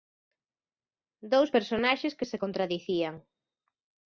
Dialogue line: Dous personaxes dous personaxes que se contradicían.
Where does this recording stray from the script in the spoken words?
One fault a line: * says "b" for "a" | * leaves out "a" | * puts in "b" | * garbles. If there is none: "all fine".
* leaves out "dous personaxes"